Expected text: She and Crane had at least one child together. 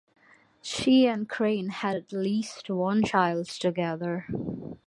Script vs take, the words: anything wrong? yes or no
no